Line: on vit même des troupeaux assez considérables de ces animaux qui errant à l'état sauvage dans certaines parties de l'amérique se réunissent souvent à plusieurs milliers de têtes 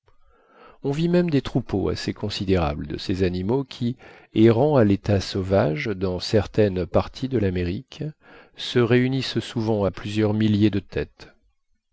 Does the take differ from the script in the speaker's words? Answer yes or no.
no